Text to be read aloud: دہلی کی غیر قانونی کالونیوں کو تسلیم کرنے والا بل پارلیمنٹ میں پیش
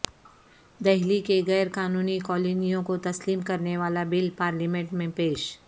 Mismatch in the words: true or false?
false